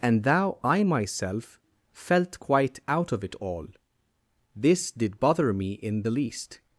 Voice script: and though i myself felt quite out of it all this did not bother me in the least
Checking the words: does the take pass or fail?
fail